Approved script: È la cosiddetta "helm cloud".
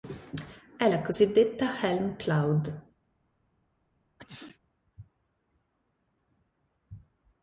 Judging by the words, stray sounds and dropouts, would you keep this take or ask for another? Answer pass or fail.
fail